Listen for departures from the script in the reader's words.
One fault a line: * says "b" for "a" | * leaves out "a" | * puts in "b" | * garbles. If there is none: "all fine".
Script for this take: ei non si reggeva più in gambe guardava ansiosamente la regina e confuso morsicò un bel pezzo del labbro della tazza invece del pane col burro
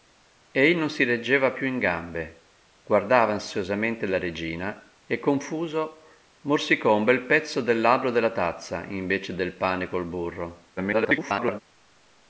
* garbles